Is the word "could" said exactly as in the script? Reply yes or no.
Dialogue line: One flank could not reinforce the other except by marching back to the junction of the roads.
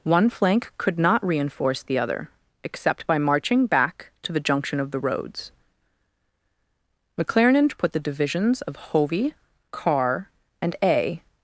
yes